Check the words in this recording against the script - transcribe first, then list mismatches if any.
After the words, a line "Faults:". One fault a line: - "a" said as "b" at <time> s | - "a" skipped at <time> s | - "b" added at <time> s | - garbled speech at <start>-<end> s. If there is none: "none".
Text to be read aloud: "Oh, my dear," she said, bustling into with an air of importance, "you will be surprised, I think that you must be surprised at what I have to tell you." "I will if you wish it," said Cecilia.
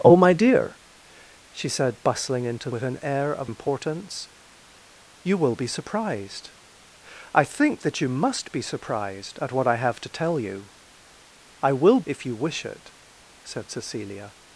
"Oh, my dear," she said, bustling into with an air of importance, "you will be surprised, I think that you must be surprised at what I have to tell you." "I will if you wish it," said Cecilia.
Faults:
none